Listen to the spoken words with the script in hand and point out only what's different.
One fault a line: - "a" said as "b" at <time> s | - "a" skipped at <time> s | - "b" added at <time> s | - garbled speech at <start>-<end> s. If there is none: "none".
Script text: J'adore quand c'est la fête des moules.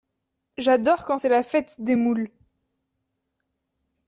none